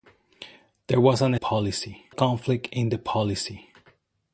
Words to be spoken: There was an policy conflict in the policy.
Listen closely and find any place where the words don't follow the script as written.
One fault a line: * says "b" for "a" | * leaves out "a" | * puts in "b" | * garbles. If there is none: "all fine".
all fine